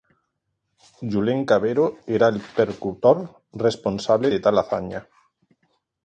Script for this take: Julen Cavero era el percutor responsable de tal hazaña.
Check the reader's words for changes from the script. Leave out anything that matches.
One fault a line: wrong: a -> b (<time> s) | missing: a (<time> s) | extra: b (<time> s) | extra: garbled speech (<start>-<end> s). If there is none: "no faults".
no faults